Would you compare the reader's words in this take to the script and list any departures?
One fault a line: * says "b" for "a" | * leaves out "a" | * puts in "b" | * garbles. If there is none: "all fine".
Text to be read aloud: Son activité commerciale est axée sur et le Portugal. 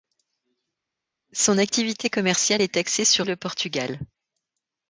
all fine